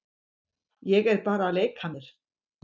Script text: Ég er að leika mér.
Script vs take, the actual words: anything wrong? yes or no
yes